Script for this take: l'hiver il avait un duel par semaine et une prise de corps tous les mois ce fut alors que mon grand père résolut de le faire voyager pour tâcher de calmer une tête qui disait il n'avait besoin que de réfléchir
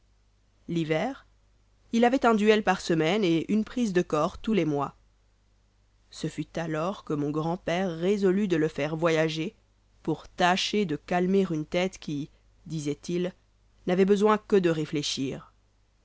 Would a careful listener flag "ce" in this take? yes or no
no